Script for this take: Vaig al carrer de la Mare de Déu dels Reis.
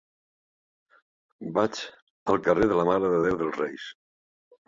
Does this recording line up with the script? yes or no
yes